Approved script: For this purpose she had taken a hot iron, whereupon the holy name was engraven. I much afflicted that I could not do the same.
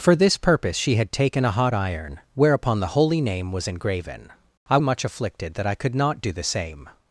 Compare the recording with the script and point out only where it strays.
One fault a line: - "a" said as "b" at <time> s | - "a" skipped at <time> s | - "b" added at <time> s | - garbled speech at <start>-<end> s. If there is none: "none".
none